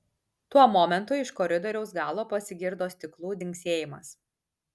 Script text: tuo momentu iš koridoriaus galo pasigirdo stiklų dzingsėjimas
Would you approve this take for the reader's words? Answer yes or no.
yes